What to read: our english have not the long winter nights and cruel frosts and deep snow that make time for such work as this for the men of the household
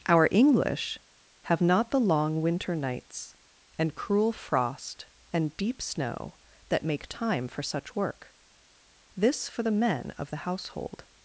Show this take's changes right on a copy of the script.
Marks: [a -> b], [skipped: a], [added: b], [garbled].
our english have not the long winter nights and cruel [frosts -> frost] and deep snow that make time for such work [skipped: as] this for the men of the household